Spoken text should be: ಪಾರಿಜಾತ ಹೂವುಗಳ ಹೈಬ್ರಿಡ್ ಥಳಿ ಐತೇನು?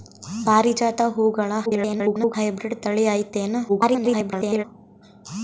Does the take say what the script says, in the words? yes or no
no